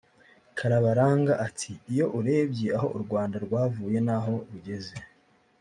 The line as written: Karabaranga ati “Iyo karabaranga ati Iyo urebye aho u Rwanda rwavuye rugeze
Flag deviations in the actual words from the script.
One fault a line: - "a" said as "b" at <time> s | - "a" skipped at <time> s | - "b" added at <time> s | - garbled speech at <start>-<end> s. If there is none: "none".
- "karabaranga ati Iyo" skipped at 2.0 s
- "n'aho" added at 4.0 s